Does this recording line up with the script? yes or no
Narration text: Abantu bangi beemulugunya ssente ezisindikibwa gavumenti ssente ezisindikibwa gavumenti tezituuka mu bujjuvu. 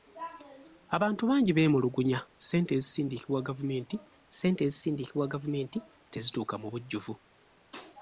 yes